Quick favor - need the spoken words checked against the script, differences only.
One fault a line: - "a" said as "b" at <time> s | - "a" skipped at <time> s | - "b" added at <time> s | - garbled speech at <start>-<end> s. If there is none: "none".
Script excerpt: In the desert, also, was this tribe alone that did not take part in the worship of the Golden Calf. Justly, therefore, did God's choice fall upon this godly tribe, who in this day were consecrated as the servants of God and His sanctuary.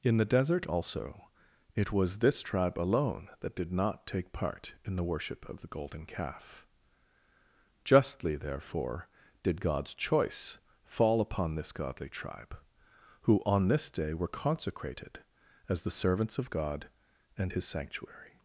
- "it" added at 1.8 s
- "in" said as "on" at 13.4 s